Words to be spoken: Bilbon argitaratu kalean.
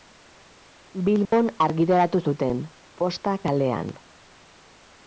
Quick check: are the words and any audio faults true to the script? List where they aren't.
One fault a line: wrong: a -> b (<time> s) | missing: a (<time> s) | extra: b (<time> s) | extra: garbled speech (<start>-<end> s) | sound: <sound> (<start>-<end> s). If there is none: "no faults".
sound: dropout (1.3-1.3 s)
extra: zuten Posta (2.3 s)